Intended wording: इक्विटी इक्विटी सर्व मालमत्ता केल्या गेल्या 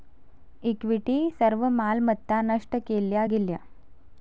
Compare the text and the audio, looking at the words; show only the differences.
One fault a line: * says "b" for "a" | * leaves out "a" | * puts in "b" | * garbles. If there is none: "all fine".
* leaves out "इक्विटी"
* puts in "नष्ट"